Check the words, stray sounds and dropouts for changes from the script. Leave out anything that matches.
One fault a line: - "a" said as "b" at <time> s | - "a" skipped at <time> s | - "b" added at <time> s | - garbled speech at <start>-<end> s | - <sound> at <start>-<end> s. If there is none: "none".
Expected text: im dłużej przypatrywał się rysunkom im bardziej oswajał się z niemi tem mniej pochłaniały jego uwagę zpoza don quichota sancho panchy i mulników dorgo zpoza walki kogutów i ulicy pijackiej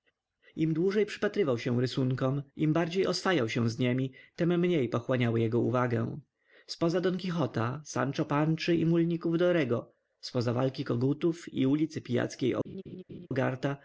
- laugh at 12.6-13.3 s